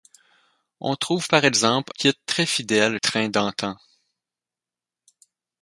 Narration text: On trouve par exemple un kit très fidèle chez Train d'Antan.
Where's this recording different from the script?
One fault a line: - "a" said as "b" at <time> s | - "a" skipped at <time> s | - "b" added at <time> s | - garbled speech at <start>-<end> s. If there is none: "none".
- "un" skipped at 1.9 s
- "chez" skipped at 3.0 s